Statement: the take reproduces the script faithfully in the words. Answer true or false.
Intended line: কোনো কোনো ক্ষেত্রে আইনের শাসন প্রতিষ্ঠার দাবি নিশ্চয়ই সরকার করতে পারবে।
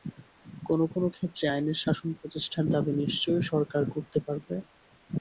true